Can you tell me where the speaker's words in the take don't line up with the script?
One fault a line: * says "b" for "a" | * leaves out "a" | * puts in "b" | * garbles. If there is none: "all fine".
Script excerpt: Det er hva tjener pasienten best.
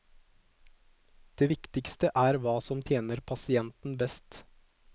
* puts in "viktigste"
* puts in "som"